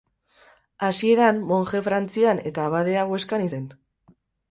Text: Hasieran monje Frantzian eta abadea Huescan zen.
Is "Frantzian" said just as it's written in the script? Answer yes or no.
yes